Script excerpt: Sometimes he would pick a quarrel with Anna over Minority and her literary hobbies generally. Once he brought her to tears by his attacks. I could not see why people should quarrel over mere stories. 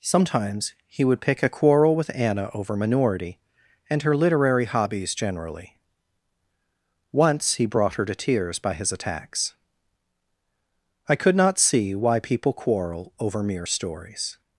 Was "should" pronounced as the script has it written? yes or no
no